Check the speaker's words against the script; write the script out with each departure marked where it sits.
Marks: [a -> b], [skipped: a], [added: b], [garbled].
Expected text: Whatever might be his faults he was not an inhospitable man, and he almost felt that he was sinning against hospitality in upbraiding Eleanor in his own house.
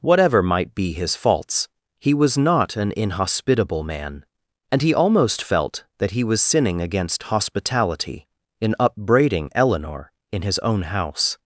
Whatever might be his faults he was not an inhospitable man, and he almost felt that he was sinning against hospitality in upbraiding Eleanor in his own house.